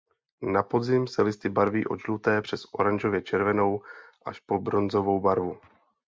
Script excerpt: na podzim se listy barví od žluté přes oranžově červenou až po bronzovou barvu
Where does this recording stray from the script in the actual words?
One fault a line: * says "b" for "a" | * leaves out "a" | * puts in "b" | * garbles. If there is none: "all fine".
all fine